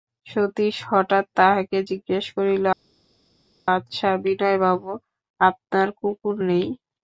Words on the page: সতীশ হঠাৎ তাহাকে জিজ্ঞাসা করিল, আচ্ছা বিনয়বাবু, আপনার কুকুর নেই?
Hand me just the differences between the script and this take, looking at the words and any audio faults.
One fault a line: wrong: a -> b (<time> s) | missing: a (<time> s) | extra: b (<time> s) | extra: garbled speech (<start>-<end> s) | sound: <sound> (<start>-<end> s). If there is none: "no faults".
no faults